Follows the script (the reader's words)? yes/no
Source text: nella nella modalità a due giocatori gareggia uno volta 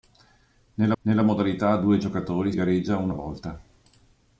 yes